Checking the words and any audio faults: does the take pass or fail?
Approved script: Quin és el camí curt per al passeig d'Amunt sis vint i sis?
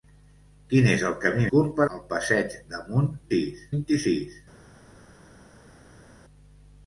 pass